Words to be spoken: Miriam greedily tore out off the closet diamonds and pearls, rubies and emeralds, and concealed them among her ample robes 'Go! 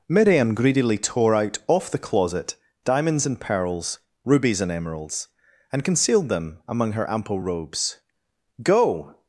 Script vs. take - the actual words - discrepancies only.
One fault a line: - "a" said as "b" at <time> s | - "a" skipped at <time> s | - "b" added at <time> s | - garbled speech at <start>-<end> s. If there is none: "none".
none